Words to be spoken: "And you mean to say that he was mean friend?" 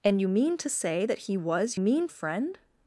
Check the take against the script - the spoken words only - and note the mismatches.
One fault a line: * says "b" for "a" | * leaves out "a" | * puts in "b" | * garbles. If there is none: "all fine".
all fine